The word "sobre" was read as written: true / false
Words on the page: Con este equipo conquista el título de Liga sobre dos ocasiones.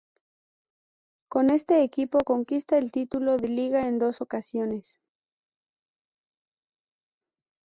false